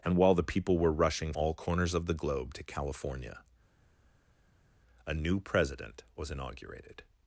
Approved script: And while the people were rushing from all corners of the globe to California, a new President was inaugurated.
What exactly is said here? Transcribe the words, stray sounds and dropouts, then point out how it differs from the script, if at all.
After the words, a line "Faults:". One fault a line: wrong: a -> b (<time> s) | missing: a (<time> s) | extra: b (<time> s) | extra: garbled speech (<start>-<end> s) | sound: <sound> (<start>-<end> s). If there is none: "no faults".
And while the people were rushing all corners of the globe to California, a new President was inaugurated.
Faults:
missing: from (1.3 s)